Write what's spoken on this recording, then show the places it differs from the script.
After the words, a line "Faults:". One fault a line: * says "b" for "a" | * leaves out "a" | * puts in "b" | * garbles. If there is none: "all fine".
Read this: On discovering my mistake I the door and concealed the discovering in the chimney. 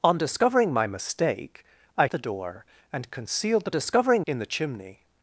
On discovering my mistake I the door and concealed the discovering in the chimney.
Faults:
all fine